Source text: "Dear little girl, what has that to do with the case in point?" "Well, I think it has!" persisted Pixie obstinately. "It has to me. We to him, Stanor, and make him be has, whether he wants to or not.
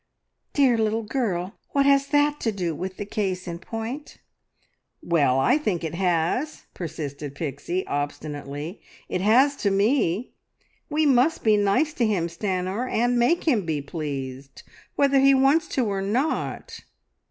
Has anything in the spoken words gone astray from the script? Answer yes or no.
yes